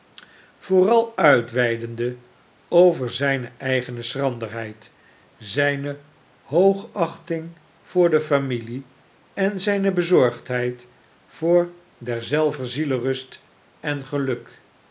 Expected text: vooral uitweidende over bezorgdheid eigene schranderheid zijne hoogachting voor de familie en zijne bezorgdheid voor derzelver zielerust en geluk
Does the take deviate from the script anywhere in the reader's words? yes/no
yes